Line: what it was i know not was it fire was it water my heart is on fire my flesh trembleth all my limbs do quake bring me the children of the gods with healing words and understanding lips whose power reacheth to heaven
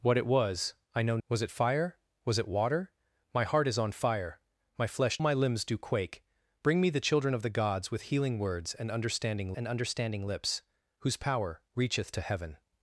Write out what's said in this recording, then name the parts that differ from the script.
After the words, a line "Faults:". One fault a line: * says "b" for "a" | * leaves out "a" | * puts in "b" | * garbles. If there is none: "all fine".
what it was i know was it fire was it water my heart is on fire my flesh my limbs do quake bring me the children of the gods with healing words and understanding and understanding lips whose power reacheth to heaven
Faults:
* leaves out "not"
* leaves out "trembleth all"
* puts in "and understanding"